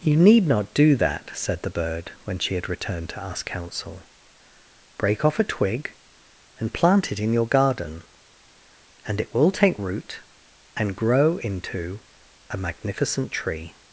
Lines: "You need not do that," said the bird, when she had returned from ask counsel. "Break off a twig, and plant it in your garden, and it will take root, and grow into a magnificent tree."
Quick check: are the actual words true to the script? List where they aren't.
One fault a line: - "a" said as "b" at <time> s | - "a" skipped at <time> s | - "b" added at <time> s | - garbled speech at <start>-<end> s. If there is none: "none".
- "from" said as "to" at 3.1 s